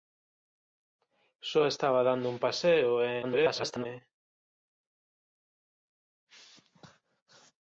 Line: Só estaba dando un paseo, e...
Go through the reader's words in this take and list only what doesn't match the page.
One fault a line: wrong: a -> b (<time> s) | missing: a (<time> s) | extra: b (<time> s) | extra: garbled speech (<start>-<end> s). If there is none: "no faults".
extra: garbled speech (3.2-3.9 s)